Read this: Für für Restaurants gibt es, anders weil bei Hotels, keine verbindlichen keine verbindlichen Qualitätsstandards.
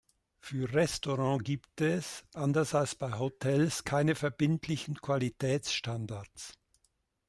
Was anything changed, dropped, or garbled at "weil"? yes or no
yes